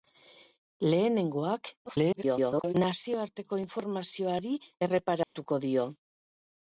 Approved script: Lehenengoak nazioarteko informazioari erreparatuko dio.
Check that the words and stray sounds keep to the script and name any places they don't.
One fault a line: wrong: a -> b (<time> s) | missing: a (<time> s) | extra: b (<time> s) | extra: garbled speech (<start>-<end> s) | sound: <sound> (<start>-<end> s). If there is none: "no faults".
extra: garbled speech (1.9-2.7 s)
sound: dropout (5.2-5.3 s)